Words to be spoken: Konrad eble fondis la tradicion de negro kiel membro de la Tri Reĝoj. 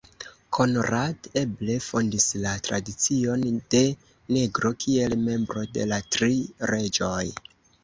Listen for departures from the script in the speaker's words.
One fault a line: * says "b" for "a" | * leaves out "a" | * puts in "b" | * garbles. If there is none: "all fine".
all fine